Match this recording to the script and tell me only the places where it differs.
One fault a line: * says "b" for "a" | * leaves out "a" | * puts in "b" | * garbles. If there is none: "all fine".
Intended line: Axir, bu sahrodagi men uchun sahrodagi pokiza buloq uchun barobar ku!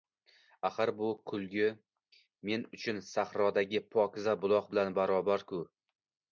* says "kulgi" for "sahrodagi"
* says "bilan" for "uchun"